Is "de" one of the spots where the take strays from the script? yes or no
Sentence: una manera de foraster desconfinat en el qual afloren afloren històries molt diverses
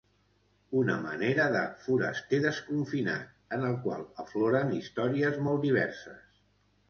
no